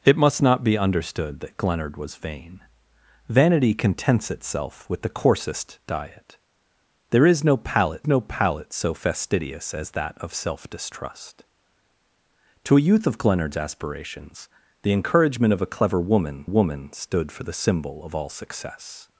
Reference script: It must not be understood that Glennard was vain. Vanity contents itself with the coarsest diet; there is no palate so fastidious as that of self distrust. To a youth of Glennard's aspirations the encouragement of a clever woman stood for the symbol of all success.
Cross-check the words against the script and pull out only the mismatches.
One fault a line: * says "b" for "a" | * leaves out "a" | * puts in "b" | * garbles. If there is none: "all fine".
* puts in "no palate"
* puts in "woman"